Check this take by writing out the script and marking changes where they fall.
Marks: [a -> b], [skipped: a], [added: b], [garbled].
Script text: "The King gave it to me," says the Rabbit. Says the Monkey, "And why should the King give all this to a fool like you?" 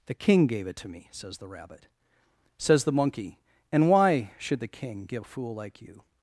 "The King gave it to me," says the Rabbit. Says the Monkey, "And why should the King give [skipped: all this to] a fool like you?"